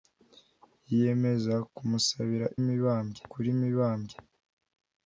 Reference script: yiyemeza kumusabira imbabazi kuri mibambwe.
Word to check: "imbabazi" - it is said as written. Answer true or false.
false